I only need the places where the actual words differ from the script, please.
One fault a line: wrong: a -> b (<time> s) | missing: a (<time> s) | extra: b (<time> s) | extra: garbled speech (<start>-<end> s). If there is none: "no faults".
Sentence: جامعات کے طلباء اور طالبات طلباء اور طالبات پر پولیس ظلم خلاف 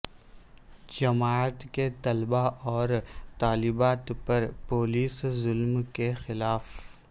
missing: طلباء اور طالبات (4.1 s)
extra: کے (5.9 s)